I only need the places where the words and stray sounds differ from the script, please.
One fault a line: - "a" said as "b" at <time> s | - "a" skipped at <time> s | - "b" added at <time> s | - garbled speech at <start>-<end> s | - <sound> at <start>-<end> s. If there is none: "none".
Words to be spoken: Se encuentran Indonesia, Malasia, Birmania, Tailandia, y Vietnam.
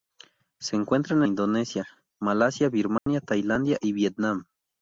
- dropout at 3.0-3.1 s